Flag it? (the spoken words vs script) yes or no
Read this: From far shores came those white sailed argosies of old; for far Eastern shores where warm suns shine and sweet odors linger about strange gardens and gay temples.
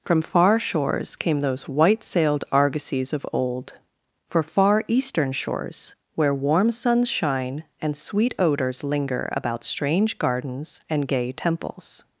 no